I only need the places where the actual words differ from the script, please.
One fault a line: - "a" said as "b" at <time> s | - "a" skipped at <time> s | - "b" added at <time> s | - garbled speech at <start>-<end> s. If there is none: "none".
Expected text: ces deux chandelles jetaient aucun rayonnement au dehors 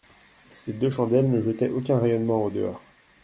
- "ne" added at 1.3 s